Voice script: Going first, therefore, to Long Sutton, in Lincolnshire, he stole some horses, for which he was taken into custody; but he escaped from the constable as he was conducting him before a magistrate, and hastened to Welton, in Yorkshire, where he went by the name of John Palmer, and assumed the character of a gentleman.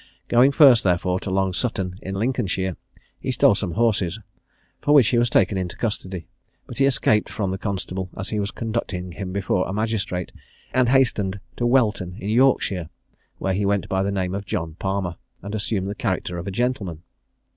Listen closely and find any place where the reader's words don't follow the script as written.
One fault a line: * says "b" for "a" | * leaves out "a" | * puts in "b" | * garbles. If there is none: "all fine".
all fine